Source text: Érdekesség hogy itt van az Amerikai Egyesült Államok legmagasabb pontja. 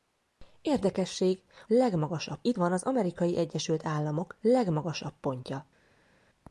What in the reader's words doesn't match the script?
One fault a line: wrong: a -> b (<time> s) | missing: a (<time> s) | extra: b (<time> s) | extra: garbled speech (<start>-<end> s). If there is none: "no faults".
wrong: hogy -> legmagasabb (1.7 s)